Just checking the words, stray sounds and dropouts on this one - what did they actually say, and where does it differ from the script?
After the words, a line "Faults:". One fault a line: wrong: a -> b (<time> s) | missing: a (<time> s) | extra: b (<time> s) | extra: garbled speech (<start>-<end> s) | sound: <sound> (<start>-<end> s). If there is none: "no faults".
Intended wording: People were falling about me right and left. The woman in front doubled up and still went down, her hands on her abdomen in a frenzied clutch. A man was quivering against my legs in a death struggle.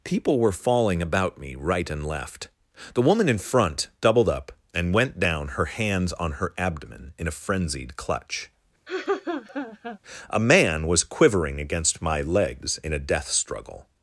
People were falling about me right and left. The woman in front doubled up and went down, her hands on her abdomen in a frenzied clutch. A man was quivering against my legs in a death struggle.
Faults:
missing: still (4.9 s)
sound: laugh (8.9-10.0 s)